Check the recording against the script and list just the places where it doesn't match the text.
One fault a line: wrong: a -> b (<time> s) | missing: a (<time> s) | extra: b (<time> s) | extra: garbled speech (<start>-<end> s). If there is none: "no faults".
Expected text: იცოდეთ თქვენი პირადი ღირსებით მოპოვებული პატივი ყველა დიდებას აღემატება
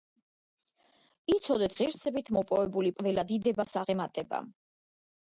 missing: თქვენი პირადი (1.8 s)
missing: პატივი (2.9 s)